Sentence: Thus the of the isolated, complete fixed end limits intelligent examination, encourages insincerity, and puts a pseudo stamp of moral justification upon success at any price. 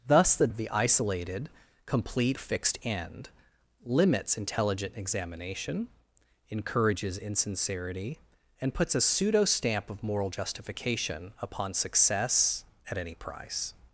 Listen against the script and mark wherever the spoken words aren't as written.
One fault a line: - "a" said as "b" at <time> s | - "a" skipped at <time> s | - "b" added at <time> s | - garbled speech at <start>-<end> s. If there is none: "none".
none